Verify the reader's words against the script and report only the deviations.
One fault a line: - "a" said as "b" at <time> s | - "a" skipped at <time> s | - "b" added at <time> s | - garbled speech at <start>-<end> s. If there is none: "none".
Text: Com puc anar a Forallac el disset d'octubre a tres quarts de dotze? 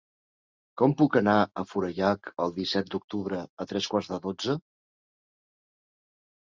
none